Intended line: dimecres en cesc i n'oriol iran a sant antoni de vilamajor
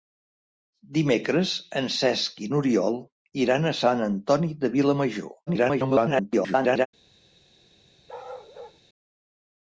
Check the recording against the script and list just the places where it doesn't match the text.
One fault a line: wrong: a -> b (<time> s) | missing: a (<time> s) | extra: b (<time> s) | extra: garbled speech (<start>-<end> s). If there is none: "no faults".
extra: garbled speech (5.5-6.9 s)